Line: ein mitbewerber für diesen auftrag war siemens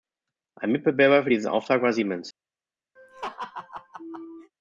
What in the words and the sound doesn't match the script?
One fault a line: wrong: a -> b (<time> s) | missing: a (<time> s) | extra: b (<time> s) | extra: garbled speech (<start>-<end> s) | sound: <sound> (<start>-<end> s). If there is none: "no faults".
sound: laugh (3.0-4.5 s)